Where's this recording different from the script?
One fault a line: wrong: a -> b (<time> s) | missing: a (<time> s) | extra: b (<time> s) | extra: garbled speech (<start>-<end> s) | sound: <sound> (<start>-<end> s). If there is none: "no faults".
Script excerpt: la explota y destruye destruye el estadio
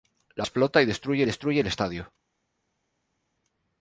no faults